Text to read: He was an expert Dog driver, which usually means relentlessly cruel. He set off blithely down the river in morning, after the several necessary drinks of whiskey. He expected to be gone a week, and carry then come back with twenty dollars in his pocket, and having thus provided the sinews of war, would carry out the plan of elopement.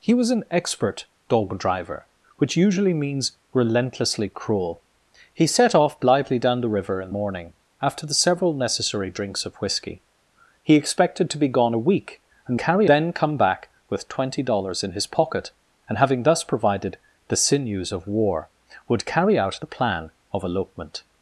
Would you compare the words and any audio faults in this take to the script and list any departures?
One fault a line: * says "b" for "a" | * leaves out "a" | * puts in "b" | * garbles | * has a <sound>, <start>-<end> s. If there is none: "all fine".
all fine